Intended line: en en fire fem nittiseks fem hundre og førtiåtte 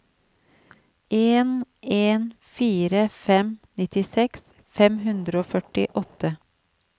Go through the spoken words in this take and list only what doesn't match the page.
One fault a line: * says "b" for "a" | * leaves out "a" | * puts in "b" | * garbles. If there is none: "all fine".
all fine